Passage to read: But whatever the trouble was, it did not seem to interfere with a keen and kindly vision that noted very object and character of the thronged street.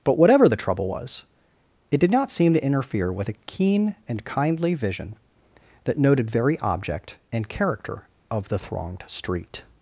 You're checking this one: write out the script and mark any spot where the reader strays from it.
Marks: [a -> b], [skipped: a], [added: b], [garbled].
But whatever the trouble was, it did not seem to interfere with a keen and kindly vision that noted very object and character of the thronged street.